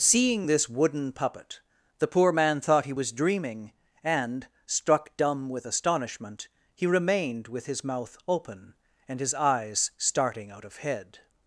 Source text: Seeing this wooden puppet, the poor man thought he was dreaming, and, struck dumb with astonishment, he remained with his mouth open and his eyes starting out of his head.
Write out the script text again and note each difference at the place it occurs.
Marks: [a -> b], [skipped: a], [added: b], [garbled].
Seeing this wooden puppet, the poor man thought he was dreaming, and, struck dumb with astonishment, he remained with his mouth open and his eyes starting out of [skipped: his] head.